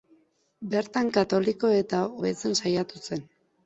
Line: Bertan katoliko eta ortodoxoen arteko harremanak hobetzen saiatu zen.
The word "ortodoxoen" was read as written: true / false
false